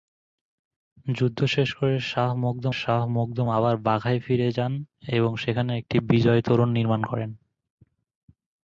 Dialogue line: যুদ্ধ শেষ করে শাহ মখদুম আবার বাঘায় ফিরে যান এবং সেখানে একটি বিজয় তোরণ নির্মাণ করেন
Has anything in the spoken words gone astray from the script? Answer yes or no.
yes